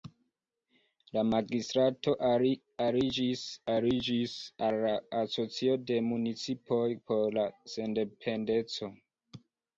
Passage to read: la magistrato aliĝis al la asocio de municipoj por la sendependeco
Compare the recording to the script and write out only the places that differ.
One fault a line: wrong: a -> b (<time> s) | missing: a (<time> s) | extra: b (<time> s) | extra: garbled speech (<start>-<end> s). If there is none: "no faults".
extra: aliĝis (3.7 s)